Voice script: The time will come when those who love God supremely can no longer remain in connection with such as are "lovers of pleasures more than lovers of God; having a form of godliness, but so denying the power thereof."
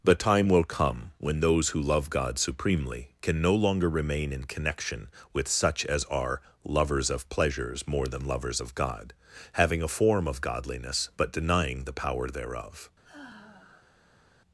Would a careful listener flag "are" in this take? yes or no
no